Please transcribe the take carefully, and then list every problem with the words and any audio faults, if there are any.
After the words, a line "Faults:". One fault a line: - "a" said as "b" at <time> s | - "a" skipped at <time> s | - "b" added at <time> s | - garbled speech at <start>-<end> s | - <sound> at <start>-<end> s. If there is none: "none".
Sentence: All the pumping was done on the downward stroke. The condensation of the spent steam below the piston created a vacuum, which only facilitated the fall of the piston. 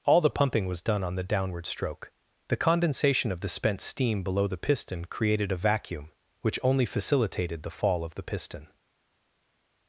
All the pumping was done on the downward stroke. The condensation of the spent steam below the piston created a vacuum, which only facilitated the fall of the piston.
Faults:
none